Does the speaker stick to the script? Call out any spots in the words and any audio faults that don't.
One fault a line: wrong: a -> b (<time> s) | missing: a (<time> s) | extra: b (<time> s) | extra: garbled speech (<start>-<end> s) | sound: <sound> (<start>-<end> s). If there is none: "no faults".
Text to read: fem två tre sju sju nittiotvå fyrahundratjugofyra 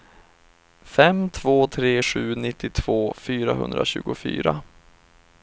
missing: sju (2.4 s)